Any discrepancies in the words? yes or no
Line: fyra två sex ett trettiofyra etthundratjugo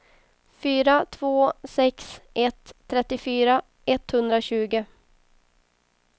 no